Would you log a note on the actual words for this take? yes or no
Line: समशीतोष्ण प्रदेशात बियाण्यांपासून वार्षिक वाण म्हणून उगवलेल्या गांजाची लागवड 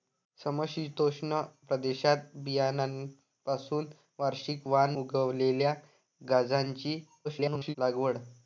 yes